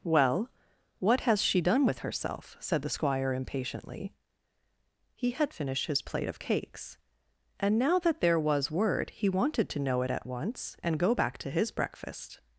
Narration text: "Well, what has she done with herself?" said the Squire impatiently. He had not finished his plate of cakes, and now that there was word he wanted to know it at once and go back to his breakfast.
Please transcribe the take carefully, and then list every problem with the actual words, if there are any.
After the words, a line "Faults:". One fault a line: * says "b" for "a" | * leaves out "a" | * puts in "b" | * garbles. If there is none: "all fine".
"Well, what has she done with herself?" said the Squire impatiently. He had finished his plate of cakes, and now that there was word he wanted to know it at once and go back to his breakfast.
Faults:
* leaves out "not"